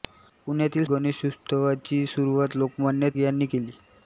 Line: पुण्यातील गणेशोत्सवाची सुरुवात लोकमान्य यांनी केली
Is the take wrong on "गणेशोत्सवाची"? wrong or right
right